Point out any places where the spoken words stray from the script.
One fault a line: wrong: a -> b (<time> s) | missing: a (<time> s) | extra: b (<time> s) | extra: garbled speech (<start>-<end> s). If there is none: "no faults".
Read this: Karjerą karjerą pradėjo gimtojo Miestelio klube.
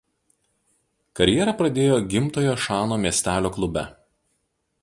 missing: karjerą (1.5 s)
extra: Šano (2.7 s)